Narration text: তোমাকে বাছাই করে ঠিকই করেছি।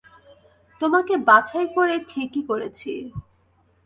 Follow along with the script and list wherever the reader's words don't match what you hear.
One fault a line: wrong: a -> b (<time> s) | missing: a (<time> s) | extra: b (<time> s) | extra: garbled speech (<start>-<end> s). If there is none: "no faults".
no faults